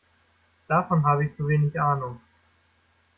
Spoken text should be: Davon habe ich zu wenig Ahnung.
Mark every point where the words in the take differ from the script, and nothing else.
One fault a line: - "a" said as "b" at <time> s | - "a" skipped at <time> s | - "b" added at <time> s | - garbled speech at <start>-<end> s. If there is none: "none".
none